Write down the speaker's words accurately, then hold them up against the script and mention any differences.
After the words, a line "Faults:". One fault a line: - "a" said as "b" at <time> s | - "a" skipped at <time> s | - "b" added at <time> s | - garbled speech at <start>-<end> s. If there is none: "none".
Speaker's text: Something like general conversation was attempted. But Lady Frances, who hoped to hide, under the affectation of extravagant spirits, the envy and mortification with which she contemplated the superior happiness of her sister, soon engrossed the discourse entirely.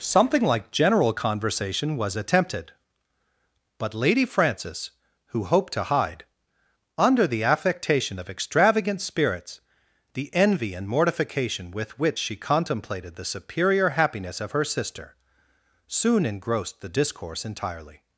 Something like general conversation was attempted. But Lady Frances, who hoped to hide, under the affectation of extravagant spirits, the envy and mortification with which she contemplated the superior happiness of her sister, soon engrossed the discourse entirely.
Faults:
none